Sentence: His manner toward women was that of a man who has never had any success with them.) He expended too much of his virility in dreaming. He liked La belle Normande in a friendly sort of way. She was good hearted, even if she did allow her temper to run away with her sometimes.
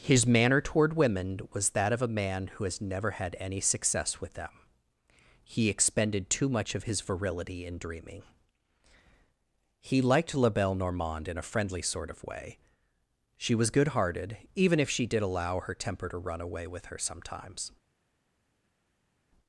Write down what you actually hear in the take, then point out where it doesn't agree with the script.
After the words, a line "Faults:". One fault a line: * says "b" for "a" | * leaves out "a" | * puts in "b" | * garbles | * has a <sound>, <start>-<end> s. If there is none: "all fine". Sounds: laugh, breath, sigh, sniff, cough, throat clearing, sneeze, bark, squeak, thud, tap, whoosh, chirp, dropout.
His manner toward women was that of a man who has never had any success with them.) He expended too much of his virility in dreaming. He liked La belle Normande in a friendly sort of way. She was good hearted, even if she did allow her temper to run away with her sometimes.
Faults:
all fine